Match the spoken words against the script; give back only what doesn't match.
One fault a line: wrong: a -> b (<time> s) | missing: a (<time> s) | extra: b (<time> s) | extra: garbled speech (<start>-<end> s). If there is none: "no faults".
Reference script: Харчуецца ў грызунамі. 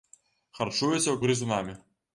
no faults